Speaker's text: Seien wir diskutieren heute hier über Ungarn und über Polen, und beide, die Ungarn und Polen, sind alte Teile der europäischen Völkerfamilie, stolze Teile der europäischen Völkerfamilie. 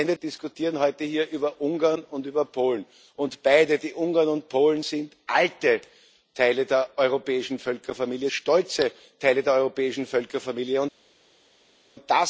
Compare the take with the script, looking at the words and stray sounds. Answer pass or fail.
pass